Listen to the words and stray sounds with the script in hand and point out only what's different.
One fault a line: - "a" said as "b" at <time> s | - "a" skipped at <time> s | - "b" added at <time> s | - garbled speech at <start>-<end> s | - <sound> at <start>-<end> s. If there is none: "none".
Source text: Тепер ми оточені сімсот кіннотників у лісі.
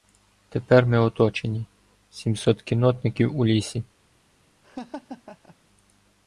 - laugh at 4.6-5.6 s